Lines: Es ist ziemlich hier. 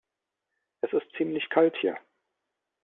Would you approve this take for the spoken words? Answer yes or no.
no